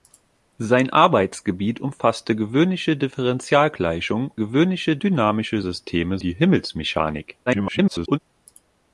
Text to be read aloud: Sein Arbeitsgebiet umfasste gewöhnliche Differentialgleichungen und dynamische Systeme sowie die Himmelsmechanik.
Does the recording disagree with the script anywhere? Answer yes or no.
yes